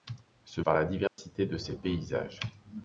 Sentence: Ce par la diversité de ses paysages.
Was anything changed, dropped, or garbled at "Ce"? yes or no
no